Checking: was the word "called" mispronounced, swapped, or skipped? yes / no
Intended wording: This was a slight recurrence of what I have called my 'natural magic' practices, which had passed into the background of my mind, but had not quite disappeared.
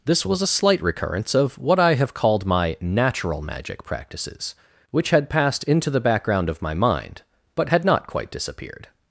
no